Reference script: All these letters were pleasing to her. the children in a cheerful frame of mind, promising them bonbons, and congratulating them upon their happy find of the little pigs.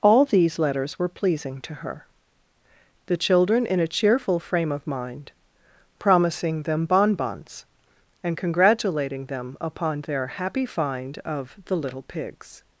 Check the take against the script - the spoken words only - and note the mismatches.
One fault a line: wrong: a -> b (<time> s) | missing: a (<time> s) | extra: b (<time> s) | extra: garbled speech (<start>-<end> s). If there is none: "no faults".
no faults